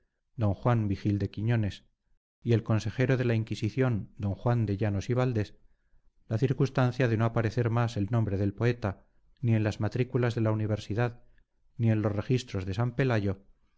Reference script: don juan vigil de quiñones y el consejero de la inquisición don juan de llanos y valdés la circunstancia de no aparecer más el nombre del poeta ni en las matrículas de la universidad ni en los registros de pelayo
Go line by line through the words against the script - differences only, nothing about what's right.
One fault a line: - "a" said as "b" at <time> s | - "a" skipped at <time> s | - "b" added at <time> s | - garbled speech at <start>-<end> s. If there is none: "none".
- "san" added at 12.8 s